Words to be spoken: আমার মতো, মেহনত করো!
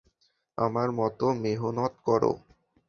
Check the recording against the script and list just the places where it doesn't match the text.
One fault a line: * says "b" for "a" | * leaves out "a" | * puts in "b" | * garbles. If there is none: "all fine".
all fine